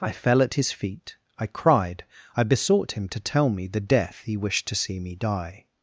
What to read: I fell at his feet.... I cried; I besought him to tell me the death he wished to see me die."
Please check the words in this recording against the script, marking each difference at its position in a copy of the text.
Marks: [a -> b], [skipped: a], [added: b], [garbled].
I fell at his feet.... I cried; I besought him to tell me the death he wished to see me die."